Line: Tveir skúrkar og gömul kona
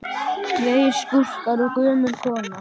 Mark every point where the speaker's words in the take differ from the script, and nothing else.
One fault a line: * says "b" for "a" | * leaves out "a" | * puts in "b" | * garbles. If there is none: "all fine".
all fine